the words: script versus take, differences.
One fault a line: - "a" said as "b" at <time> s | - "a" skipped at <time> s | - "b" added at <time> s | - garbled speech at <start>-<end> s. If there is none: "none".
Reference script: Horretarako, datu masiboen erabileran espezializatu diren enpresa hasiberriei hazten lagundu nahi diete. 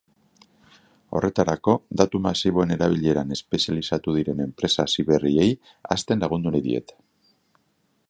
none